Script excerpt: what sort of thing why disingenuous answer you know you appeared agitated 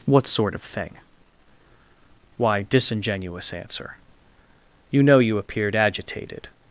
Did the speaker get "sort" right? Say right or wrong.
right